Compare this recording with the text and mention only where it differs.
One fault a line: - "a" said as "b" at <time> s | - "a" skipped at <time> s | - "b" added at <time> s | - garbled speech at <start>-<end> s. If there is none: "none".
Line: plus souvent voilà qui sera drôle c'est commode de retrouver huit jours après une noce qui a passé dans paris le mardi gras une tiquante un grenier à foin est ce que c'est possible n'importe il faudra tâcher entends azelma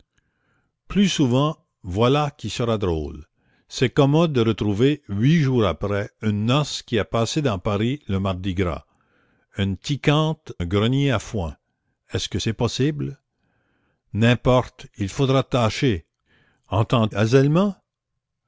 none